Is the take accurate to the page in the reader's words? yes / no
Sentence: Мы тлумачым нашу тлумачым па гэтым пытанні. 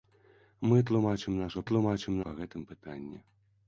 yes